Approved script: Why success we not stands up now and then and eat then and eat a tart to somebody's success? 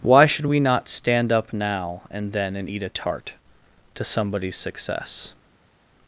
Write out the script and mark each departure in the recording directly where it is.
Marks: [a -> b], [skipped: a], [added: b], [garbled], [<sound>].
Why [success -> should] we not [stands -> stand] up now and then and eat [skipped: then and eat] a tart to somebody's success?